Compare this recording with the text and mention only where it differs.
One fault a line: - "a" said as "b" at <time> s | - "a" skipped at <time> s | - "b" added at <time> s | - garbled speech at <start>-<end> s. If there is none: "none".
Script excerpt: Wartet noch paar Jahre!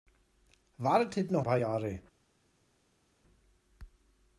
none